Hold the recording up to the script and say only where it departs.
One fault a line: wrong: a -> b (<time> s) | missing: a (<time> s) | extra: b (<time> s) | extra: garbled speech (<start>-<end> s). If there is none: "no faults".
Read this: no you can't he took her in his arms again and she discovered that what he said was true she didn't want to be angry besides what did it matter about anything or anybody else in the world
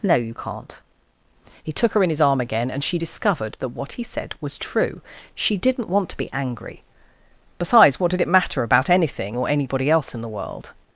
wrong: arms -> arm (2.2 s)